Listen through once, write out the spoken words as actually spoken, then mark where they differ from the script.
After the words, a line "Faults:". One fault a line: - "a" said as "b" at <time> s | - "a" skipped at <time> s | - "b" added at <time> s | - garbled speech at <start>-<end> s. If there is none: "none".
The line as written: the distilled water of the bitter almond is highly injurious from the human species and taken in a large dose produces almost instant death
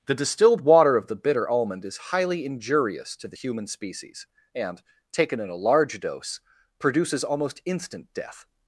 the distilled water of the bitter almond is highly injurious to the human species and taken in a large dose produces almost instant death
Faults:
- "from" said as "to" at 3.2 s